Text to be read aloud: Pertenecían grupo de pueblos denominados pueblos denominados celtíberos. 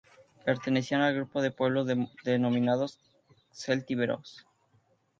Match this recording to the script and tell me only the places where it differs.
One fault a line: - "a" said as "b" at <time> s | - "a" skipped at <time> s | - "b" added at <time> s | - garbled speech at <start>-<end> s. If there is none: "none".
- "al" added at 1.0 s
- "pueblos denominados" skipped at 3.0 s